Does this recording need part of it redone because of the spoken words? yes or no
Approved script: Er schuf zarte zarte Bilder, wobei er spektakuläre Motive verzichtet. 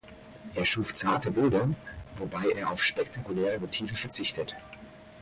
yes